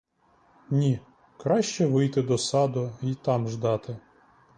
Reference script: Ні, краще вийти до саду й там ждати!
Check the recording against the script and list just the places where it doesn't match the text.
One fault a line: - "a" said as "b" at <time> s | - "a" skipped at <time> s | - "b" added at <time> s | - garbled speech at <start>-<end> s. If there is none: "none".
none